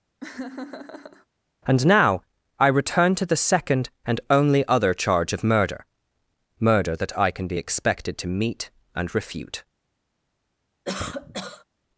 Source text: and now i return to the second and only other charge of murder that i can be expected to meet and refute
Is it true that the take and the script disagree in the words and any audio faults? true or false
true